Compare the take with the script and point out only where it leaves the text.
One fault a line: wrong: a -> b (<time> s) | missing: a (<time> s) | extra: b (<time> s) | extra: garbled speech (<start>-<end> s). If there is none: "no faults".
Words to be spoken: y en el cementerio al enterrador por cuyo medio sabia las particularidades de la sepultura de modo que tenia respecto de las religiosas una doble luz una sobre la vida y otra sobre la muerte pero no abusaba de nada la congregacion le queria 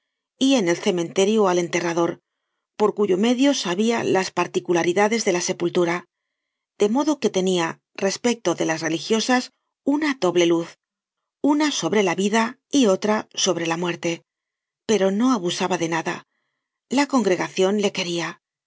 no faults